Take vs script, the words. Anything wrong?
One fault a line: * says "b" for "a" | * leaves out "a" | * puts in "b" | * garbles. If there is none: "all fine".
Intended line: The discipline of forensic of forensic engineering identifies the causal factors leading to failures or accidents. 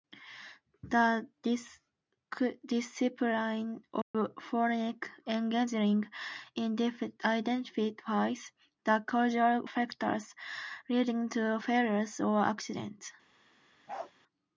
* leaves out "of forensic"